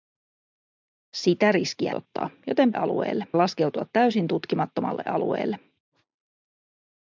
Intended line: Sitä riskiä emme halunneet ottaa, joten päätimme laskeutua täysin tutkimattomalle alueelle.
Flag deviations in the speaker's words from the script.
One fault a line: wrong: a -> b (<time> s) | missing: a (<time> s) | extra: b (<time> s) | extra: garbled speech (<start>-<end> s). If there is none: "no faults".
missing: emme halunneet (1.9 s)
wrong: päätimme -> alueelle (2.7 s)